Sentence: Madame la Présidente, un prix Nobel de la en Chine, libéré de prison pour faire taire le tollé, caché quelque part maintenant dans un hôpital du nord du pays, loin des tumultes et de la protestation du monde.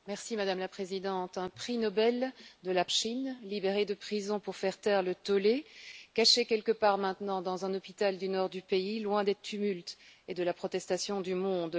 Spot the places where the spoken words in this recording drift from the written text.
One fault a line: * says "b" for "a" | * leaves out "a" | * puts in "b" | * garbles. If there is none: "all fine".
all fine